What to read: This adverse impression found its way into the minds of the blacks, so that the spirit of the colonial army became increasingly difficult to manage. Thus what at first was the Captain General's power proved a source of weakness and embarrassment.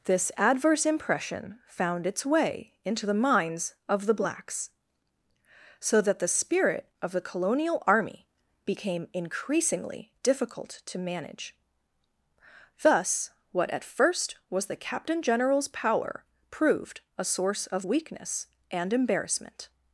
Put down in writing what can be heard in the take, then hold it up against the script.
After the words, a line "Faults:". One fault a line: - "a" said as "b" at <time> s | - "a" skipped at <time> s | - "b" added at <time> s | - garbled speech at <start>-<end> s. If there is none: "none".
This adverse impression found its way into the minds of the blacks, so that the spirit of the colonial army became increasingly difficult to manage. Thus what at first was the Captain General's power proved a source of weakness and embarrassment.
Faults:
none